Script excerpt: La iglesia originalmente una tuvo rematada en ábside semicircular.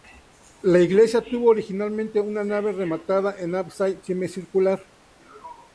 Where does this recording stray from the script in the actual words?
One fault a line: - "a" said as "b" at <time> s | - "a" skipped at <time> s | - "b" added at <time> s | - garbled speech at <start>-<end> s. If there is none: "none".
- "tuvo" added at 1.2 s
- "tuvo" said as "nave" at 2.4 s